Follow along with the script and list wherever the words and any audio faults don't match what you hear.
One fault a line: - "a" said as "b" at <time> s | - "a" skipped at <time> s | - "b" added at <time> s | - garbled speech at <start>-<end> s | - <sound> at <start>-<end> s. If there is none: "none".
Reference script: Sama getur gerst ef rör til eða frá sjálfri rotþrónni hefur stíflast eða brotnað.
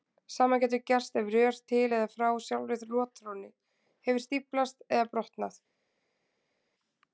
none